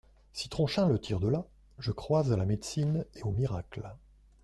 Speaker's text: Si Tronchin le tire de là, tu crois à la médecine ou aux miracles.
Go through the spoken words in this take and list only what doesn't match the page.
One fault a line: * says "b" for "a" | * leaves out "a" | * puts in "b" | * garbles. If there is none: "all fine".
* says "je" for "tu"
* says "et" for "ou"